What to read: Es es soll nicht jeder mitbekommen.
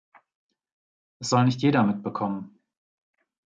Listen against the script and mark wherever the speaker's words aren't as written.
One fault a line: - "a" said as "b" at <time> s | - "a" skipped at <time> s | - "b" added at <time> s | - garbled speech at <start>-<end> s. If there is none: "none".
- "es" skipped at 1.3 s